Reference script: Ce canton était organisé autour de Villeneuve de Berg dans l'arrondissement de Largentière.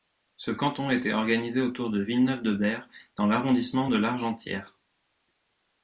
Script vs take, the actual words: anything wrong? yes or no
no